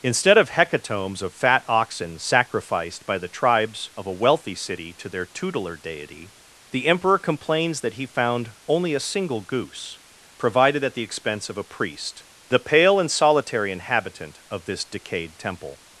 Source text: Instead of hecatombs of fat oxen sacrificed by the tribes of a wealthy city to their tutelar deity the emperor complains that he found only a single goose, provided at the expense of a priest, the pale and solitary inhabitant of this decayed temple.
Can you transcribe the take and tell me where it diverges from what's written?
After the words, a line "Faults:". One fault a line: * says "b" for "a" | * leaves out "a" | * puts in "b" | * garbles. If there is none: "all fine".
Instead of hecatombs of fat oxen sacrificed by the tribes of a wealthy city to their tutelar deity the emperor complains that he found only a single goose, provided at the expense of a priest, the pale and solitary inhabitant of this decayed temple.
Faults:
all fine